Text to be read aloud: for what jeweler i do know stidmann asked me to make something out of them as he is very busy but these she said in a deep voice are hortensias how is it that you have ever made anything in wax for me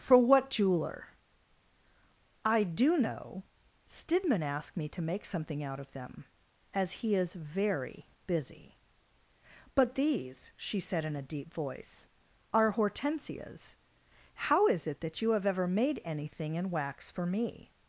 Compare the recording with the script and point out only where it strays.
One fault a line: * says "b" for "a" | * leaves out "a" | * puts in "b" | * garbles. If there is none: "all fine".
all fine